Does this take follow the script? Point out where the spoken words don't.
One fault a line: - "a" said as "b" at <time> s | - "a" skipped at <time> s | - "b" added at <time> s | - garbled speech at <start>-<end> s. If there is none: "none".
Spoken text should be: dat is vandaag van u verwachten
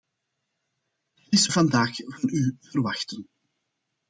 none